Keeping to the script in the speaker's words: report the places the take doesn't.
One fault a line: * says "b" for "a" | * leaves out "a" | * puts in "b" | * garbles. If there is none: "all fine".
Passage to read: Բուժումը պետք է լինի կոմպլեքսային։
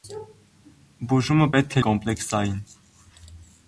* leaves out "լինի"